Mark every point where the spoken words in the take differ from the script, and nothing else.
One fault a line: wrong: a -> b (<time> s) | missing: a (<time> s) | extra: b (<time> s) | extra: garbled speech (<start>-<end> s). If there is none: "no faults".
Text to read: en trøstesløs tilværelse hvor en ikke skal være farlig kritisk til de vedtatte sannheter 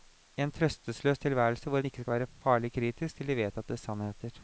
no faults